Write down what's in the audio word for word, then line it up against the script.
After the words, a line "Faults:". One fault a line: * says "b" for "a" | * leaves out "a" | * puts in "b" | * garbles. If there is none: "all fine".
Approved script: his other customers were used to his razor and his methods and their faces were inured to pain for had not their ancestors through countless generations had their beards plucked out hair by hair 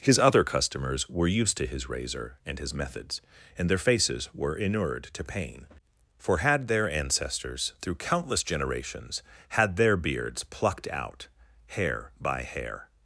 his other customers were used to his razor and his methods and their faces were inured to pain for had their ancestors through countless generations had their beards plucked out hair by hair
Faults:
* leaves out "not"